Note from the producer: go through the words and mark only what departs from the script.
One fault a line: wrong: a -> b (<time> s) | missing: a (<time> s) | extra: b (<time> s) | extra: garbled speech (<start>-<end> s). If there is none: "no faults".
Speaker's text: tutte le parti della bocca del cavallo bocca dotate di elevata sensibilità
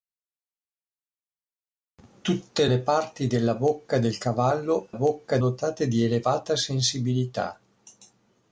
no faults